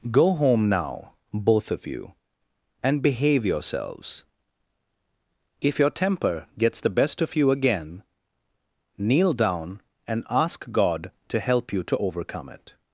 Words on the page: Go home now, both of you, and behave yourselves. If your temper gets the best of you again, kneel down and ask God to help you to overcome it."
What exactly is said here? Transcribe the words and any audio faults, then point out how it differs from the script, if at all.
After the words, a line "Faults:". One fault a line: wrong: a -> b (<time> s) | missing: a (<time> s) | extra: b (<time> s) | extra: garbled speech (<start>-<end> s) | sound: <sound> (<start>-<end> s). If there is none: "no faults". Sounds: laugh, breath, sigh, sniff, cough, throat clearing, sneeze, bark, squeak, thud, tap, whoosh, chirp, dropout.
Go home now, both of you, and behave yourselves. If your temper gets the best of you again, kneel down and ask God to help you to overcome it."
Faults:
no faults